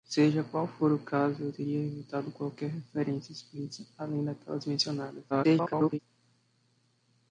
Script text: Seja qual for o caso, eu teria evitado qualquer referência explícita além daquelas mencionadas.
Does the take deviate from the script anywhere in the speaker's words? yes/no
yes